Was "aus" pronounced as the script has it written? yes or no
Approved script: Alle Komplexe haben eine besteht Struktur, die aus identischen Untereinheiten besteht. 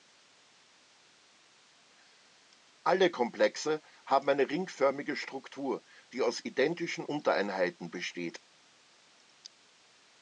yes